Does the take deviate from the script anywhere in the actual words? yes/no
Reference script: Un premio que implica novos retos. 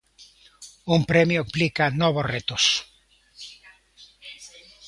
yes